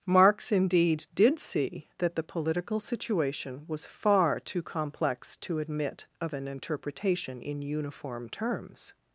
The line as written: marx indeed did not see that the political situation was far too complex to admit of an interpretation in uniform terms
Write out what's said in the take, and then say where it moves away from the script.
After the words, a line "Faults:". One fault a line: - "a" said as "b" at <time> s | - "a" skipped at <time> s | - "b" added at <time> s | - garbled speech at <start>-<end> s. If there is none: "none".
marx indeed did see that the political situation was far too complex to admit of an interpretation in uniform terms
Faults:
- "not" skipped at 1.4 s